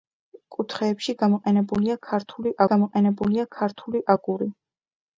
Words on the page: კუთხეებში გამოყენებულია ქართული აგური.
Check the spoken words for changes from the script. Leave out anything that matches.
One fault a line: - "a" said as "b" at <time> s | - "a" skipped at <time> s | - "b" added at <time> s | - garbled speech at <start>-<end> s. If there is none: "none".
- "გამოყენებულია ქართული" added at 2.7 s